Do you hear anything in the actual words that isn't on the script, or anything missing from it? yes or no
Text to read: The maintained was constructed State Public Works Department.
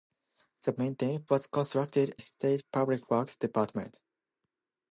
no